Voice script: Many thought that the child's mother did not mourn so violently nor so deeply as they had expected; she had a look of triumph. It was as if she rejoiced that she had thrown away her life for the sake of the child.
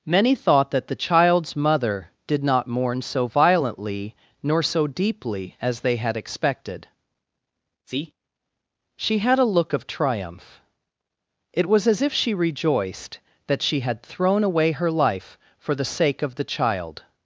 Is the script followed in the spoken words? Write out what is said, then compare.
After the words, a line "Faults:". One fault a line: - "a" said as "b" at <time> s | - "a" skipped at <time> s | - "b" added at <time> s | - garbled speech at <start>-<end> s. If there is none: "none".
Many thought that the child's mother did not mourn so violently nor so deeply as they had expected; see she had a look of triumph. It was as if she rejoiced that she had thrown away her life for the sake of the child.
Faults:
- "see" added at 7.8 s